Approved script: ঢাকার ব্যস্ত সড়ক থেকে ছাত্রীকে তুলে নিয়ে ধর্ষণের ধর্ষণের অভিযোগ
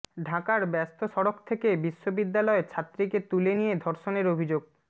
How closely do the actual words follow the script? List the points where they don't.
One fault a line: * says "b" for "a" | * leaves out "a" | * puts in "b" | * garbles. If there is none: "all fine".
* puts in "বিশ্ববিদ্যালয়"
* leaves out "ধর্ষণের"